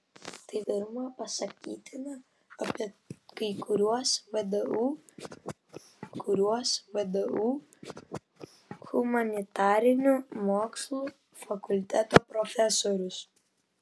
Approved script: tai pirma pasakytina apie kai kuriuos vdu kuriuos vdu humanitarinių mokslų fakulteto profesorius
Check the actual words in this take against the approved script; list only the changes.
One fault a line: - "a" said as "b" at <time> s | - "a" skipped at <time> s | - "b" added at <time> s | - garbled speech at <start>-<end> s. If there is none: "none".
none